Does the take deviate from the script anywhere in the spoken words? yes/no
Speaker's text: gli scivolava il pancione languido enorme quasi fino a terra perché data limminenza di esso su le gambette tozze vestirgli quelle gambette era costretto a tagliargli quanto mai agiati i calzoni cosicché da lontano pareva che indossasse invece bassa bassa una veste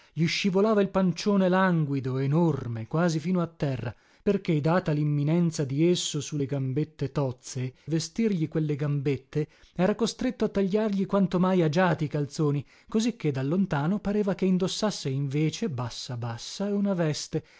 no